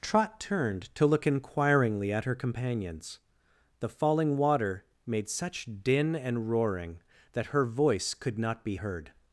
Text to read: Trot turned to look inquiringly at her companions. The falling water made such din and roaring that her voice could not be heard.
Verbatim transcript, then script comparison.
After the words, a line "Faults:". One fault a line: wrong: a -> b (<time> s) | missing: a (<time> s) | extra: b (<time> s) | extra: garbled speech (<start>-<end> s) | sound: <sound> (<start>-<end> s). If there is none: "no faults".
Trot turned to look inquiringly at her companions. The falling water made such din and roaring that her voice could not be heard.
Faults:
no faults